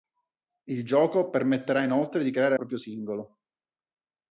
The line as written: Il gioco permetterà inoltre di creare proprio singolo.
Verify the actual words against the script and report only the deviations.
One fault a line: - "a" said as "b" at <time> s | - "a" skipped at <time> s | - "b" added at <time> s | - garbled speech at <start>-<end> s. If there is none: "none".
none